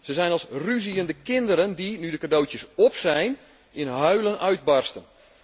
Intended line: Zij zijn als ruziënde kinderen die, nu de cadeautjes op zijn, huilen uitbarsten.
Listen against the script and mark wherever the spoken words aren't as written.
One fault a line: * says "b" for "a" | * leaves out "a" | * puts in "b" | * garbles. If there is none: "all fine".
* puts in "in"